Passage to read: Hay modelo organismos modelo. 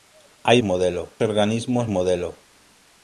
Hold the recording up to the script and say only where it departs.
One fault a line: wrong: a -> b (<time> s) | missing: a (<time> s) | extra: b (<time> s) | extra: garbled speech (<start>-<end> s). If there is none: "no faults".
no faults